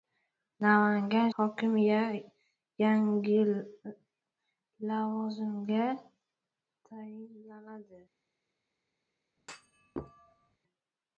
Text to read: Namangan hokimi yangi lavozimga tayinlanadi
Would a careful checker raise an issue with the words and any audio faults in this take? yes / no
yes